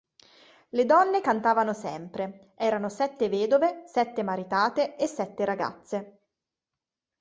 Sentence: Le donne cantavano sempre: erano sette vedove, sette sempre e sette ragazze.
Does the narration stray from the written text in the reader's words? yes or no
yes